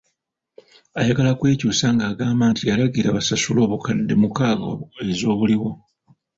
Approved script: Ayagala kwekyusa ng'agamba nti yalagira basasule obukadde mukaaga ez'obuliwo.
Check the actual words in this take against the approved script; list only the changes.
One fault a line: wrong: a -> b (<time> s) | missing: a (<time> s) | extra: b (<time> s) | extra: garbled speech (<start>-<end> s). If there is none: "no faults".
no faults